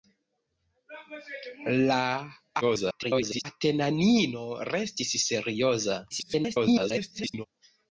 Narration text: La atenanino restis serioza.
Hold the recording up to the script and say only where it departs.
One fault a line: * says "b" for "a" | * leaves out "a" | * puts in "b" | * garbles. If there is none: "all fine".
* garbles
* garbles